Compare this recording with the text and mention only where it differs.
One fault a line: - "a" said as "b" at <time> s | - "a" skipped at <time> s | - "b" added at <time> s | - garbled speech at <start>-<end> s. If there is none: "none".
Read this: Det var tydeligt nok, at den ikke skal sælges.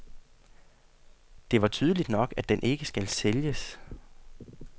none